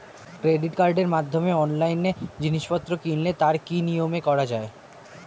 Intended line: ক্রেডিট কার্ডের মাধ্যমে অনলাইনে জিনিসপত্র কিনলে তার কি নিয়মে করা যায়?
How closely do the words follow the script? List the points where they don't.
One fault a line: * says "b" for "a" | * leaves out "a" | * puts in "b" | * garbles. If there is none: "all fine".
all fine